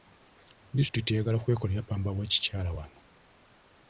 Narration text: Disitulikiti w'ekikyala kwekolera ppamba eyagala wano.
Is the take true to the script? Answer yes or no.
no